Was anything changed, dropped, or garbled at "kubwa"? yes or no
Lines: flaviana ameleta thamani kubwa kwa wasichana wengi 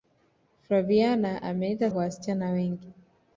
yes